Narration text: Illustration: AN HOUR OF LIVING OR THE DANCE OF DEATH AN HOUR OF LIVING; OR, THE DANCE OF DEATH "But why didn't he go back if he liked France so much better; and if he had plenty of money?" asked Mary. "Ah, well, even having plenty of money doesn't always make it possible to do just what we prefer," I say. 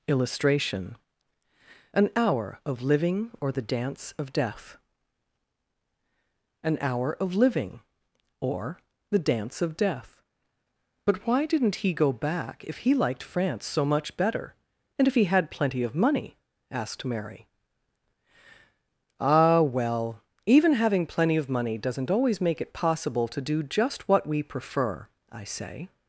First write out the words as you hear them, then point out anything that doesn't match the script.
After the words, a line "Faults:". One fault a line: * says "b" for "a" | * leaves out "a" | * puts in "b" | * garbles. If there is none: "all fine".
Illustration: AN HOUR OF LIVING OR THE DANCE OF DEATH AN HOUR OF LIVING; OR, THE DANCE OF DEATH "But why didn't he go back if he liked France so much better; and if he had plenty of money?" asked Mary. "Ah, well, even having plenty of money doesn't always make it possible to do just what we prefer," I say.
Faults:
all fine